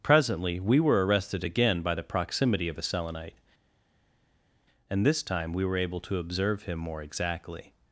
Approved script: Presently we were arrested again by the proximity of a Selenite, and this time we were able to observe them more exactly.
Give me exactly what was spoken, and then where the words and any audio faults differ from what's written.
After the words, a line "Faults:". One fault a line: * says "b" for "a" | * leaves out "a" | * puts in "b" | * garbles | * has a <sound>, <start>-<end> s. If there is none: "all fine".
Presently we were arrested again by the proximity of a Selenite, and this time we were able to observe him more exactly.
Faults:
* says "him" for "them"